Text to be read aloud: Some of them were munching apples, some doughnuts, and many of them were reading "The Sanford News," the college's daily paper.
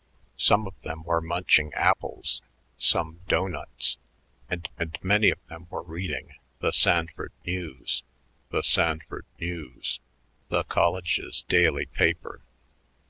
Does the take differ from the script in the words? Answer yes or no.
yes